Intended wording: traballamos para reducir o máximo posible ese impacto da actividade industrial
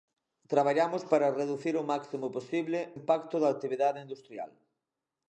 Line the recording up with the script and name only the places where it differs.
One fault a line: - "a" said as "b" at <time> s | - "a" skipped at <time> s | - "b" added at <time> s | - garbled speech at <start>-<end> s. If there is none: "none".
- "ese" skipped at 2.8 s